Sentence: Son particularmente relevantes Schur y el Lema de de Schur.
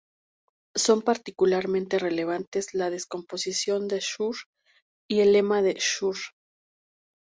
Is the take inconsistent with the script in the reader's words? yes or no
yes